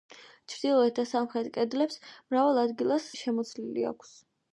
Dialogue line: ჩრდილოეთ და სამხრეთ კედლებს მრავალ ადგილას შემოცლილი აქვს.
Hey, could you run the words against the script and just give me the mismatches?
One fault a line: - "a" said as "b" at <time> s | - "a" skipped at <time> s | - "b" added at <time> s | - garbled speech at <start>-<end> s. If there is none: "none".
none